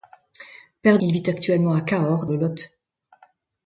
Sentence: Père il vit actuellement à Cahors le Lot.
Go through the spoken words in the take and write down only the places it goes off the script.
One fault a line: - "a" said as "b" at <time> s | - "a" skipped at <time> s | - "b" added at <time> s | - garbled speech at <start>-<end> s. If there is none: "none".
none